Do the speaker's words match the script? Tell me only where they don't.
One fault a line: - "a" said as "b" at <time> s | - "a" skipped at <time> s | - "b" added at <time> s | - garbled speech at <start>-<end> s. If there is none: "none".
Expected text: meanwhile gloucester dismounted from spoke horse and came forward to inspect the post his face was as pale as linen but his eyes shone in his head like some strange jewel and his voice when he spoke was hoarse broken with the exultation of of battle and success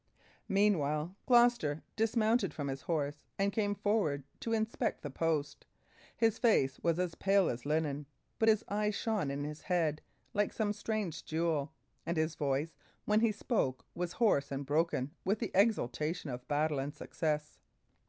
- "spoke" said as "his" at 2.7 s
- "and" added at 14.5 s
- "of" skipped at 16.5 s